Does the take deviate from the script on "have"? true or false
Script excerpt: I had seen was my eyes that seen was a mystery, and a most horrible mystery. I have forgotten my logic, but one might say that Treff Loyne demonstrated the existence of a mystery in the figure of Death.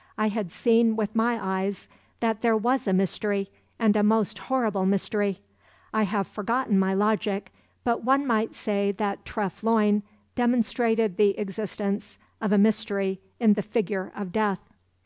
false